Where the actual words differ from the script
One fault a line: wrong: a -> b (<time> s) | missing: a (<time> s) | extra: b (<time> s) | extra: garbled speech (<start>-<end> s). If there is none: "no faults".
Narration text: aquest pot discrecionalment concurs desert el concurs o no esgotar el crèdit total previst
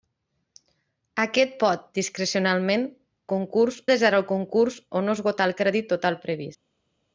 no faults